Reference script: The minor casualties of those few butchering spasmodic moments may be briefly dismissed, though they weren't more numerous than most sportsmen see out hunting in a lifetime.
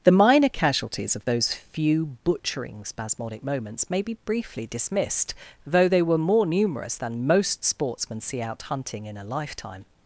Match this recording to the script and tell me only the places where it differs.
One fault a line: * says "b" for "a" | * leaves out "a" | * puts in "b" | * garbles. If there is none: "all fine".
* says "were" for "weren't"